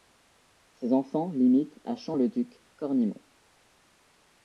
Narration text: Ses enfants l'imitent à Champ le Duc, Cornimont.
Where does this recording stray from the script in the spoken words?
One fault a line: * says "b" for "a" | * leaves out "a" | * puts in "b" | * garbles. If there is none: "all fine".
all fine